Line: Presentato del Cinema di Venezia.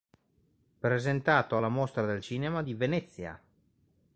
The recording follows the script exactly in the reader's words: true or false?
false